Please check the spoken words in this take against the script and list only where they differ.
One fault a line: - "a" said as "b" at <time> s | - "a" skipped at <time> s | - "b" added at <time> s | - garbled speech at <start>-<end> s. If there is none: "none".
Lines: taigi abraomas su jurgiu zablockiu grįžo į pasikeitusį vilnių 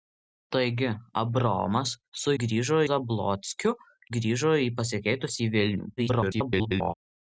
- "jurgiu" said as "grįžo" at 2.4 s
- garbled speech at 6.0-6.9 s